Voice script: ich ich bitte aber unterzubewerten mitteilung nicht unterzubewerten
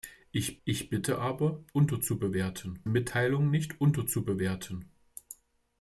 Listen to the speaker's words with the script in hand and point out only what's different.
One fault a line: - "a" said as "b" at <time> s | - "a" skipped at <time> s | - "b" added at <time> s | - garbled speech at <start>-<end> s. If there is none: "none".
none